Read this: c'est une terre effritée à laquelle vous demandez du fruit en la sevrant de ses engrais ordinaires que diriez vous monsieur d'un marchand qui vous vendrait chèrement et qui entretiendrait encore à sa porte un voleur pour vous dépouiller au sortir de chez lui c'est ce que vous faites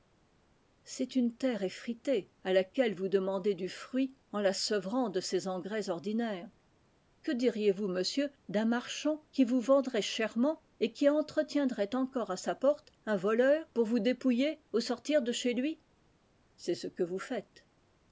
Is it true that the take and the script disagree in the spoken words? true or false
false